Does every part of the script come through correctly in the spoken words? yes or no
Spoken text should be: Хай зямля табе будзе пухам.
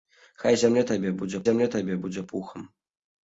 no